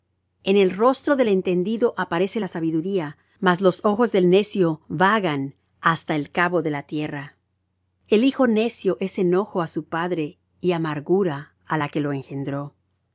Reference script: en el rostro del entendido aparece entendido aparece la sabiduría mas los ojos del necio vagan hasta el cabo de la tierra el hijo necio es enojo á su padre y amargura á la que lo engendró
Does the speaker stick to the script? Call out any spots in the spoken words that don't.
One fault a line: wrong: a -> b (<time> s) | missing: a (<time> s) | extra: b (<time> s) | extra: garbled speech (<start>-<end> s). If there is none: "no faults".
missing: entendido aparece (2.4 s)